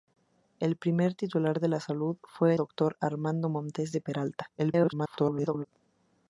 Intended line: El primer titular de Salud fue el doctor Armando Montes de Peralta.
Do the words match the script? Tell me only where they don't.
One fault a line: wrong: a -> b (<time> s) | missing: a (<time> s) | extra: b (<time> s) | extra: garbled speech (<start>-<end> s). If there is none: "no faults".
missing: el (2.5 s)
extra: garbled speech (4.6-5.7 s)